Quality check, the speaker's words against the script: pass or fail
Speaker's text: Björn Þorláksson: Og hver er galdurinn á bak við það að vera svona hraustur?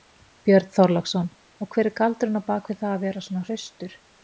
pass